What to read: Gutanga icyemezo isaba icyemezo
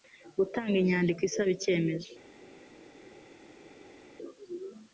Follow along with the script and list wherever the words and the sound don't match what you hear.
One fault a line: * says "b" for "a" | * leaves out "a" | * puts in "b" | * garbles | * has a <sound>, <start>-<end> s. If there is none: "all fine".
* says "inyandiko" for "icyemezo"